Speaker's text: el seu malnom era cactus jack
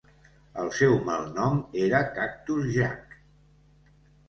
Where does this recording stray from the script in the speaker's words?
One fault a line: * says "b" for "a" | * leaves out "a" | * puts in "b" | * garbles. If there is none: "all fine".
all fine